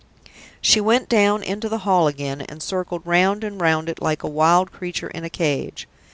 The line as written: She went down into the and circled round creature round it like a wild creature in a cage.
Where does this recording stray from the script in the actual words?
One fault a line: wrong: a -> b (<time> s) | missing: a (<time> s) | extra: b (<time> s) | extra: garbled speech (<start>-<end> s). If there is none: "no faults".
extra: hall again (1.9 s)
wrong: creature -> and (3.4 s)